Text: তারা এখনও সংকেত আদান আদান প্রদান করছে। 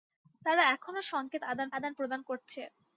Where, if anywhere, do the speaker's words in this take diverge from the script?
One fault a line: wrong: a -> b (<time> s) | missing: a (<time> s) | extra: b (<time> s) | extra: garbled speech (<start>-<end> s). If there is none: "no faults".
no faults